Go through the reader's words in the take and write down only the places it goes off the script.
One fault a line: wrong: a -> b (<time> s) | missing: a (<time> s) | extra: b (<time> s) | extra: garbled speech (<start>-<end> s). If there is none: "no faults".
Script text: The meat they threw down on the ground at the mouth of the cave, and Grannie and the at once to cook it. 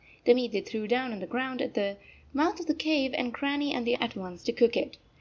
no faults